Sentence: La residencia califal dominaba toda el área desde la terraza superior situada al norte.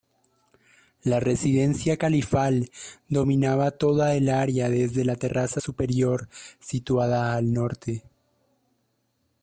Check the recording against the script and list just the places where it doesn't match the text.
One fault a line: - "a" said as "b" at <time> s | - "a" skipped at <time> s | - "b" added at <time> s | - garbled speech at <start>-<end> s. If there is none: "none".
none